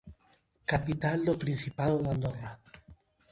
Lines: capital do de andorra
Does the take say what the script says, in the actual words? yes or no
no